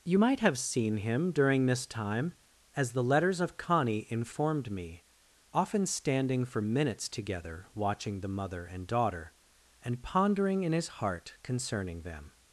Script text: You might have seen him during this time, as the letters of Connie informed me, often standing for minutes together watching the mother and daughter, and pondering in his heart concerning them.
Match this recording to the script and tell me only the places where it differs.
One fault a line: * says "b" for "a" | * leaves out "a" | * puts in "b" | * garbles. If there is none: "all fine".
all fine